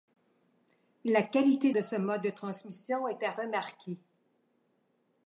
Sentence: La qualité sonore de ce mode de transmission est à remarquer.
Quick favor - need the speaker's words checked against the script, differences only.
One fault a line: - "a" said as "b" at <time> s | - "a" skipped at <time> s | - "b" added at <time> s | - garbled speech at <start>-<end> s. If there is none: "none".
- "sonore" skipped at 1.7 s